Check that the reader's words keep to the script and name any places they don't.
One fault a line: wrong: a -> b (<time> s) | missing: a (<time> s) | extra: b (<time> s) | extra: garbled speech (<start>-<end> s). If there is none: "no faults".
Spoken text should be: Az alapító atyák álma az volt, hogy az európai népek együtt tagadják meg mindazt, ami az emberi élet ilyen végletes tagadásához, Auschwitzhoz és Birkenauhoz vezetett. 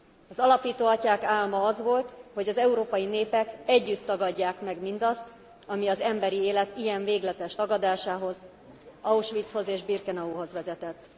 no faults